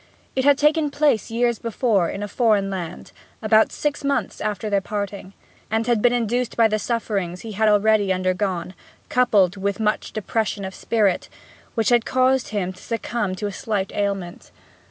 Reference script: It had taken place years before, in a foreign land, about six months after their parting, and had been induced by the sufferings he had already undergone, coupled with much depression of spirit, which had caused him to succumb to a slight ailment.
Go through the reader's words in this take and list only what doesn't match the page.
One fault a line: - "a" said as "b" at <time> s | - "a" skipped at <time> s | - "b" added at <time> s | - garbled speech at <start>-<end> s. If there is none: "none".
none